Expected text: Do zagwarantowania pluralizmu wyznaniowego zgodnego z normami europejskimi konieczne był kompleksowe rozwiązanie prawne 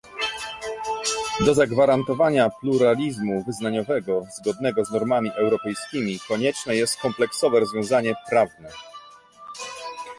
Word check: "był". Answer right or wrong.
wrong